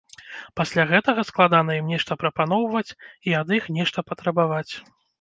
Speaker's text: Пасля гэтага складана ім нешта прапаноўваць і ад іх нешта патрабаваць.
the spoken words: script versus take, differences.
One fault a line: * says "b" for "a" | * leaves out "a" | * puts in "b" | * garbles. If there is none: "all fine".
all fine